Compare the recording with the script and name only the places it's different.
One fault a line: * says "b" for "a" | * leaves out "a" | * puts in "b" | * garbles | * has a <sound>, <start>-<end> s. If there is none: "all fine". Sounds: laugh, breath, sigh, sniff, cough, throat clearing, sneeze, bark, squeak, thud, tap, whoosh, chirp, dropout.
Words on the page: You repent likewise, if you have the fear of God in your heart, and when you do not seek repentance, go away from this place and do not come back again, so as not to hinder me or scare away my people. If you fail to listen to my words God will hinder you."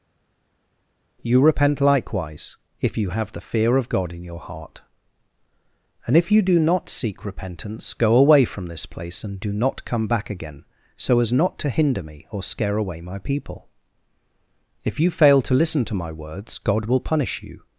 * says "if" for "when"
* says "punish" for "hinder"